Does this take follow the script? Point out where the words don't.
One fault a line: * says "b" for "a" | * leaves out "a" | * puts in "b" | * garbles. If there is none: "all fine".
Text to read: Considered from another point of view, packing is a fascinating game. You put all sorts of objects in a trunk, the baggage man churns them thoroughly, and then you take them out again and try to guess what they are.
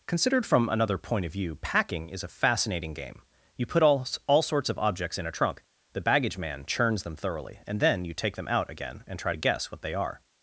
* puts in "all"